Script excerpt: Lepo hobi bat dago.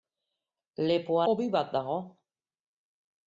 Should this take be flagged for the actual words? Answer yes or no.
no